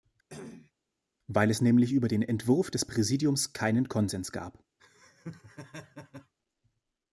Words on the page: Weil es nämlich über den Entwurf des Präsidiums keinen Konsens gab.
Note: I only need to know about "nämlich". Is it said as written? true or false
true